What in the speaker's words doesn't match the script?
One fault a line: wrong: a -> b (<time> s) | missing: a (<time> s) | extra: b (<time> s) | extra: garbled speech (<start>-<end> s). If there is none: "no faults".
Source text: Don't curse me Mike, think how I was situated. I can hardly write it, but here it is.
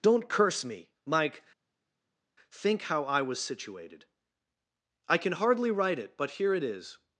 no faults